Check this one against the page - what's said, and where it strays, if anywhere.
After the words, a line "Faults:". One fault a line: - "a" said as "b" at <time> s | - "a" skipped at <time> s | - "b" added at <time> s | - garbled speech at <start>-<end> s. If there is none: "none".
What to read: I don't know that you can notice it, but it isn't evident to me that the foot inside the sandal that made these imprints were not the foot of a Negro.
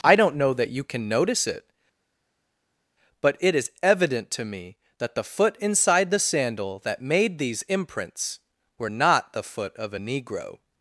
I don't know that you can notice it, but it is evident to me that the foot inside the sandal that made these imprints were not the foot of a Negro.
Faults:
- "isn't" said as "is" at 3.5 s